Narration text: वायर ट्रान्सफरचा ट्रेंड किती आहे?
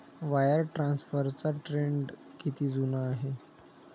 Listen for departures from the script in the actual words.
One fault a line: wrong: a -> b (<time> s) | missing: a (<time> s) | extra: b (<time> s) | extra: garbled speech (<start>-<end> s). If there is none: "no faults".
extra: जुना (2.7 s)